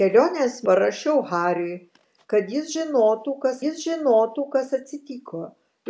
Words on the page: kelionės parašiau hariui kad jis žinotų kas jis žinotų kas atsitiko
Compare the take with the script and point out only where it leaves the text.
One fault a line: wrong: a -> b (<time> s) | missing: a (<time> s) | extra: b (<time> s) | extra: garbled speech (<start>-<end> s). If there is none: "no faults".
no faults